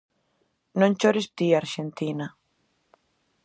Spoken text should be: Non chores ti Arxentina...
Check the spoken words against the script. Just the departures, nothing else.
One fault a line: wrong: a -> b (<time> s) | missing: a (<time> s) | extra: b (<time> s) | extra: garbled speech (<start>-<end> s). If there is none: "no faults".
no faults